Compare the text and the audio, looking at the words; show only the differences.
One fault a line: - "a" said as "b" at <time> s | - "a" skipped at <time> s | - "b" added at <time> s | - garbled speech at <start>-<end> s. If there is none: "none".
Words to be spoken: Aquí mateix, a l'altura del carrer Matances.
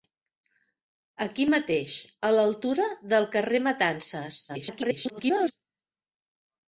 - garbled speech at 4.5-5.5 s